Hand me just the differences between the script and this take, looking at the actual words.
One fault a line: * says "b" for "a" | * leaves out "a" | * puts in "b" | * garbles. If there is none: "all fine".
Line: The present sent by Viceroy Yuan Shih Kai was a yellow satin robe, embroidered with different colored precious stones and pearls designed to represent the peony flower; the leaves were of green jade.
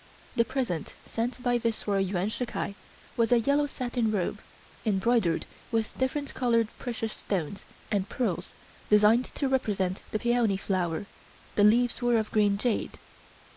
all fine